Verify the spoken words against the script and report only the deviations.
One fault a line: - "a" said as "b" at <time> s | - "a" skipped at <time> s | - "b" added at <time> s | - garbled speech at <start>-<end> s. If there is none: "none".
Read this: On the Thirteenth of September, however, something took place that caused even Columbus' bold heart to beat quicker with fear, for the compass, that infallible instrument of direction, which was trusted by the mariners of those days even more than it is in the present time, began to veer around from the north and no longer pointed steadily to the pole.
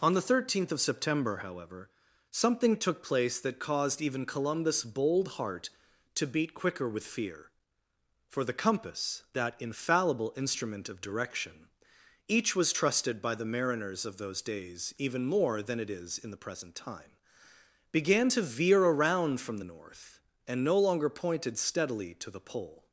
- "which" said as "each" at 12.3 s